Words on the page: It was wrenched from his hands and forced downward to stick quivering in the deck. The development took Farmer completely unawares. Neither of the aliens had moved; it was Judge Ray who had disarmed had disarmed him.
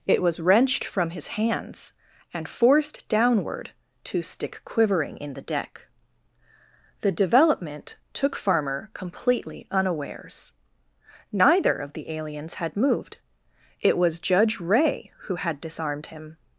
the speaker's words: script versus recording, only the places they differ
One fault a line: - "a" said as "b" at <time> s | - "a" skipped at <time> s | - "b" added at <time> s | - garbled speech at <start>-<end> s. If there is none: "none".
- "had disarmed" skipped at 16.1 s